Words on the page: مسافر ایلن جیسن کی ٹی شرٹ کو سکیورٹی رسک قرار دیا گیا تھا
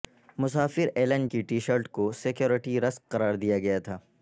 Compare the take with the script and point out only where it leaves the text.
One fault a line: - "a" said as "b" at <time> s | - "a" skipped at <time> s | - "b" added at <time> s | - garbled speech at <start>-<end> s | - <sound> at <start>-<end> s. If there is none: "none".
- "جیسن" skipped at 1.3 s